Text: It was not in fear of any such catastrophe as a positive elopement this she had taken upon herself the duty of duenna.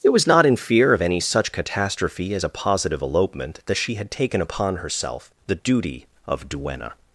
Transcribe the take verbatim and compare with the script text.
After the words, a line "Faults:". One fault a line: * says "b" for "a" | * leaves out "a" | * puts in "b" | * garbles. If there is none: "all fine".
It was not in fear of any such catastrophe as a positive elopement that she had taken upon herself the duty of duenna.
Faults:
* says "that" for "this"